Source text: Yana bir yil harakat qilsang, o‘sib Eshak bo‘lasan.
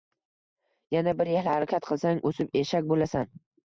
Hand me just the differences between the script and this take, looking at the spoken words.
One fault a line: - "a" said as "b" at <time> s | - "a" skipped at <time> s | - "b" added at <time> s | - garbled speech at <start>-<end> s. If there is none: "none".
none